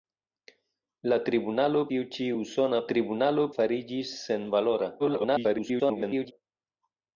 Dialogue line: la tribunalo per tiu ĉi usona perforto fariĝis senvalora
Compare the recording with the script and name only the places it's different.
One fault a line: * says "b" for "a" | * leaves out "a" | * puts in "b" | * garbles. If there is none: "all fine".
* leaves out "per"
* says "tribunalo" for "perforto"
* garbles